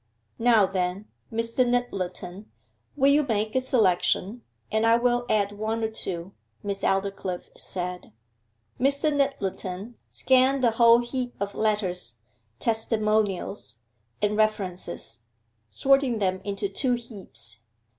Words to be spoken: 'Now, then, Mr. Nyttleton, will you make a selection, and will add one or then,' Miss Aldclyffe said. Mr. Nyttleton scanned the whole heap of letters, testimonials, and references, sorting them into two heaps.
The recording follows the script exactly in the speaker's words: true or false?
false